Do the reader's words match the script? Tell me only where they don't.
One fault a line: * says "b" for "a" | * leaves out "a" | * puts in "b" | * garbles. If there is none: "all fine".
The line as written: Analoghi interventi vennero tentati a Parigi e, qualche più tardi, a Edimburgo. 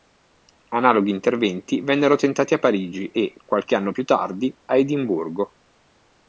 * puts in "anno"